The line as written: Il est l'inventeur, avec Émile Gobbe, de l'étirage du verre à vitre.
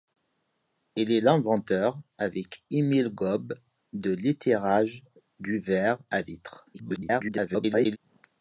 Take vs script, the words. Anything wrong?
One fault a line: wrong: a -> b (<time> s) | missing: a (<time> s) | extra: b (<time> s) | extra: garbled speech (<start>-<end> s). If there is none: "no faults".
extra: garbled speech (6.7-8.0 s)